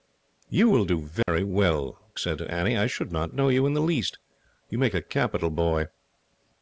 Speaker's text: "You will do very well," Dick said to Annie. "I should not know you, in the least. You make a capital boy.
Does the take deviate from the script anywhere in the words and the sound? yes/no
yes